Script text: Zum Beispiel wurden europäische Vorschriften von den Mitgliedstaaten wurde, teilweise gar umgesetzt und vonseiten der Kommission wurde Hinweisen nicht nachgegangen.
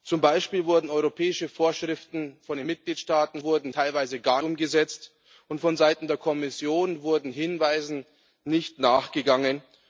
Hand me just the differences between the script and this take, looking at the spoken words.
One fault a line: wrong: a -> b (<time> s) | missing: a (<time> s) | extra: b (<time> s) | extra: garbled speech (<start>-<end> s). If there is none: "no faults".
no faults